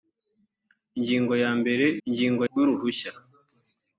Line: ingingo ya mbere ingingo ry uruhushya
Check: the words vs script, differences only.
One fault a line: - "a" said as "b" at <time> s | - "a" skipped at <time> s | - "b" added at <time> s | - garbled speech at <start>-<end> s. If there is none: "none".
none